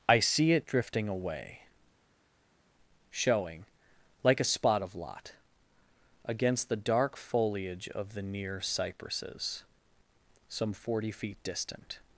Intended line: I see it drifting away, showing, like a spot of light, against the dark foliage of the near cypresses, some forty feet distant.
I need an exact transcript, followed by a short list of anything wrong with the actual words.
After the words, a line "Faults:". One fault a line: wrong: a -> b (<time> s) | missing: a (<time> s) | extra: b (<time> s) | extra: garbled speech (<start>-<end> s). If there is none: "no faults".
I see it drifting away, showing, like a spot of lot, against the dark foliage of the near cypresses, some forty feet distant.
Faults:
wrong: light -> lot (4.9 s)